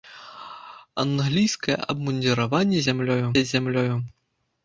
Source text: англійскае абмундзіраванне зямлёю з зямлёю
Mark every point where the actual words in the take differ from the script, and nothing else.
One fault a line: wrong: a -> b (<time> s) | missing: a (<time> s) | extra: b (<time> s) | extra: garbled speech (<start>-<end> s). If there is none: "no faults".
no faults